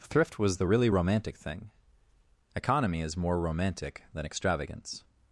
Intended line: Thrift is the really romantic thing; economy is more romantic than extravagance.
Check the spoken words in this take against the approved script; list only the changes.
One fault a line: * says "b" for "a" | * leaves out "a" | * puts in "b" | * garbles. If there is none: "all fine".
* says "was" for "is"